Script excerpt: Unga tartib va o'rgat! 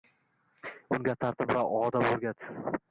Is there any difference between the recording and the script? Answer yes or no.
yes